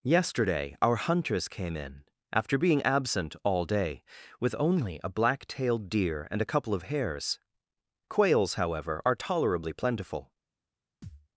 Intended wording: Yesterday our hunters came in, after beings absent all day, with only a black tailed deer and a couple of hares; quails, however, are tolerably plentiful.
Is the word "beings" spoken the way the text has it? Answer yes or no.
no